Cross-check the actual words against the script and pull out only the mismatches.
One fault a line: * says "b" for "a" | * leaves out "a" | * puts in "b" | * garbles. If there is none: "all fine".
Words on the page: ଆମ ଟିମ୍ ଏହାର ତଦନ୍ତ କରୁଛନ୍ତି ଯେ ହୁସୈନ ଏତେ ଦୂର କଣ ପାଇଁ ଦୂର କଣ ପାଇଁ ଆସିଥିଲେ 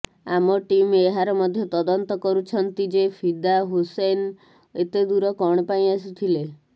* puts in "ମଧ୍ୟ"
* puts in "ଫିଦା"
* leaves out "ଦୂର କଣ ପାଇଁ"